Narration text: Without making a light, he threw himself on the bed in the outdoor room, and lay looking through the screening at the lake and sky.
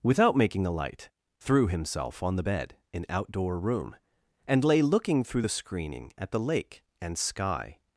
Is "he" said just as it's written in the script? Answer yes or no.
no